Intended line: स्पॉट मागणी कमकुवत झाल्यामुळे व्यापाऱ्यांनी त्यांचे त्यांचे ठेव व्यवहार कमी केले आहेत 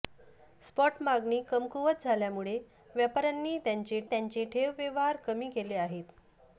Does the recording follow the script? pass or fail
pass